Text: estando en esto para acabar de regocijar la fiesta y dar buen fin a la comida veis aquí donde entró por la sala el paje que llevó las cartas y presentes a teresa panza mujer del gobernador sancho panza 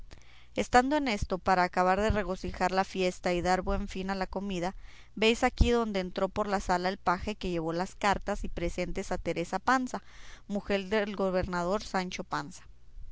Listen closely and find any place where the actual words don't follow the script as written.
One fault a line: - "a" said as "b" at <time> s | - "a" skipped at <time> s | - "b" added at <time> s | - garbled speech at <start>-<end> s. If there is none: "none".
none